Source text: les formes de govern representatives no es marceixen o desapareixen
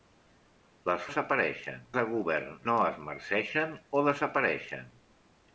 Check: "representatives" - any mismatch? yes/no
yes